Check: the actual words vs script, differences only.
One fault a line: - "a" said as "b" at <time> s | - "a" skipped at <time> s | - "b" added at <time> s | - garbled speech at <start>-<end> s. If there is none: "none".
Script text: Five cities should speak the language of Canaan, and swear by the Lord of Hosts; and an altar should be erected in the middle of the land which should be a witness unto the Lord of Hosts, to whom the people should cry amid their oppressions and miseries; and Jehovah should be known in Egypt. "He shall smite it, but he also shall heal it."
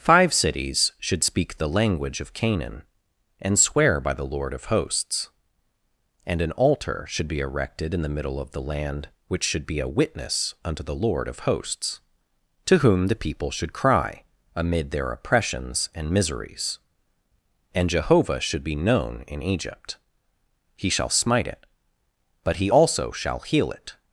none